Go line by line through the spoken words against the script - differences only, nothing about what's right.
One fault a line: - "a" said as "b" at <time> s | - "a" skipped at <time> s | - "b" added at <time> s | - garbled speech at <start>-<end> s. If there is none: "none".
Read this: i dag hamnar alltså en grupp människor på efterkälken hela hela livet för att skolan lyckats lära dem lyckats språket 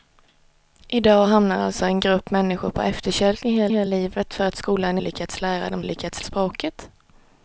none